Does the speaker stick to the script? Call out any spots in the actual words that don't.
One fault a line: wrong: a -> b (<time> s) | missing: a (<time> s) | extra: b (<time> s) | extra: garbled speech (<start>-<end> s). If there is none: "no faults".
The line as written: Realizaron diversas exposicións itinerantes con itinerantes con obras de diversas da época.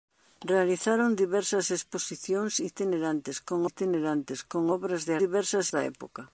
no faults